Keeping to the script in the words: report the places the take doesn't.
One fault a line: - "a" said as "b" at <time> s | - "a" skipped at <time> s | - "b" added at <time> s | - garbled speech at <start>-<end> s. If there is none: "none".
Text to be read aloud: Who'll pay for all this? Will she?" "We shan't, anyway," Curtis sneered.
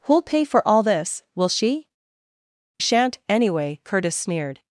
- "We" skipped at 1.9 s